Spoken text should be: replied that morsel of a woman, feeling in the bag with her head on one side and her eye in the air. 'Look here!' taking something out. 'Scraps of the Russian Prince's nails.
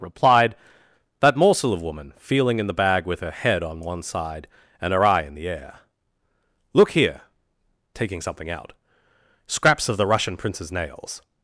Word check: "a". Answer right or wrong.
wrong